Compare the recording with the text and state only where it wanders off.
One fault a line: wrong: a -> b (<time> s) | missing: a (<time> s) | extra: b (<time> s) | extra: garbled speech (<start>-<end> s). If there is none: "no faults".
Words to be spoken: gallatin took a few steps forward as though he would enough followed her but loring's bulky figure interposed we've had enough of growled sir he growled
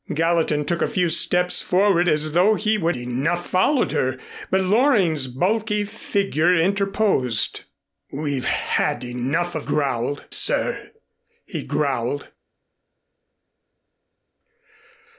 no faults